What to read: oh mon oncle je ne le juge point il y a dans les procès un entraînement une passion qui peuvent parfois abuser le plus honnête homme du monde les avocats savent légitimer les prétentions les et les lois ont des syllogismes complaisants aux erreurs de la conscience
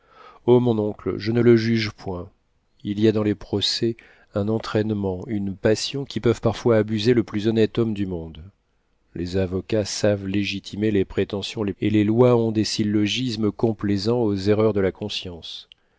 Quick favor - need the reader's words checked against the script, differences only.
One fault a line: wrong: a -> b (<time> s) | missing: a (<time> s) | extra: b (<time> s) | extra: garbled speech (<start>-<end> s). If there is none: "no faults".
no faults